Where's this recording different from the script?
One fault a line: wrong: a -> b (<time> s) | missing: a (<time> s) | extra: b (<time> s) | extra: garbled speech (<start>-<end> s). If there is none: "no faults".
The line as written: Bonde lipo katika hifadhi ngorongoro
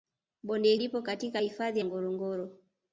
no faults